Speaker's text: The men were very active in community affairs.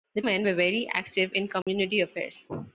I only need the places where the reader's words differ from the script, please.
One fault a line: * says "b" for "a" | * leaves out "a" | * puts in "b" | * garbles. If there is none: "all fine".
all fine